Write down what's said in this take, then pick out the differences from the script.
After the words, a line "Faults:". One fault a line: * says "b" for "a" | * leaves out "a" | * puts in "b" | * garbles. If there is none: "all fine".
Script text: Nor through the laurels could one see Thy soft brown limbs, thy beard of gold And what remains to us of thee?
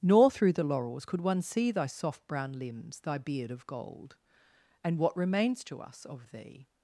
Nor through the laurels could one see Thy soft brown limbs, thy beard of gold And what remains to us of thee?
Faults:
all fine